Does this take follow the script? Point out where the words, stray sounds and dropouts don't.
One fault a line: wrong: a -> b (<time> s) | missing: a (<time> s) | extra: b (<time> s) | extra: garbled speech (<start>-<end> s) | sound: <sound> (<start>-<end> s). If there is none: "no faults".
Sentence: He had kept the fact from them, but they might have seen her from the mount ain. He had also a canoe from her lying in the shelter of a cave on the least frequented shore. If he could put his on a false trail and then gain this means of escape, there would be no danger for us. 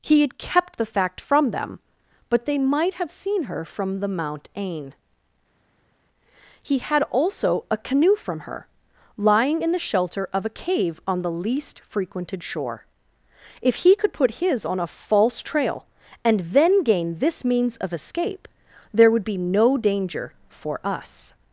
no faults